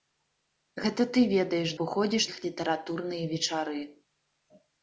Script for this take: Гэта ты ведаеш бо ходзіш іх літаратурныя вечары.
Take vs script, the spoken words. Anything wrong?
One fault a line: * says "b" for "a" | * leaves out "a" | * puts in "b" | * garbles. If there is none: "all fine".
all fine